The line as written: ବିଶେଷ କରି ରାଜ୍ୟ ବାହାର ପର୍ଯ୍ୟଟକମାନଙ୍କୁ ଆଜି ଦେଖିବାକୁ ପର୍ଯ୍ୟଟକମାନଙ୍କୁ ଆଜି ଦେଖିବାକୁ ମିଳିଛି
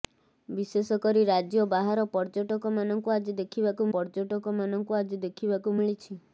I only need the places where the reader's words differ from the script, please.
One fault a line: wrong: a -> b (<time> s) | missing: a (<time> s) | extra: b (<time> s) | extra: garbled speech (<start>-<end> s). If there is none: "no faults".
no faults